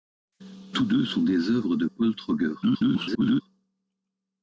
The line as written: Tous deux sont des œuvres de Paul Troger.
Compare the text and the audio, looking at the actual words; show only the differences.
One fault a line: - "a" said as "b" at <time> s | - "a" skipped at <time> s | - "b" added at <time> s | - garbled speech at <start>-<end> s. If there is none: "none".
- garbled speech at 2.6-3.4 s